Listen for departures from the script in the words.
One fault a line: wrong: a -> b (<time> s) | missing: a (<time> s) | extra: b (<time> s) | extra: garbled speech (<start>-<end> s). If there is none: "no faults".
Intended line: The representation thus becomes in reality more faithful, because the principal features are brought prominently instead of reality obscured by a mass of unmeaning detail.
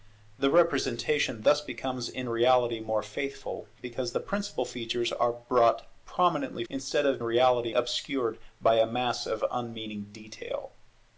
no faults